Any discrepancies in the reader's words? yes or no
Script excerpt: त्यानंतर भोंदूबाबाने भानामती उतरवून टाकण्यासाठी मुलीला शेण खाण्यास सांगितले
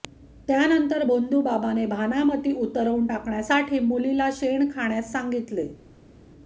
no